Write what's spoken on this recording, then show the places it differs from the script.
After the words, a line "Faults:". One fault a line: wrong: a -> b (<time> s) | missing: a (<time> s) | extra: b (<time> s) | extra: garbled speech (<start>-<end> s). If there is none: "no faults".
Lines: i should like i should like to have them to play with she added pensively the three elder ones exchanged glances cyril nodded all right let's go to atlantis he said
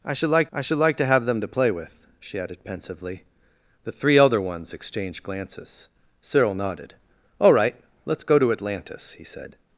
i should like i should like to have them to play with she added pensively the three elder ones exchanged glances cyril nodded all right let's go to atlantis he said
Faults:
no faults